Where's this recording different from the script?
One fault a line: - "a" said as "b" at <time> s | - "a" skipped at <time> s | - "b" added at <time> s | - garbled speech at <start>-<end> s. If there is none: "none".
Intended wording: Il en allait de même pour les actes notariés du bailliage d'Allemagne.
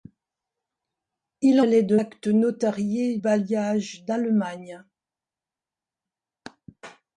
- "en" skipped at 1.6 s
- "même pour les" skipped at 2.0 s
- "du" skipped at 3.2 s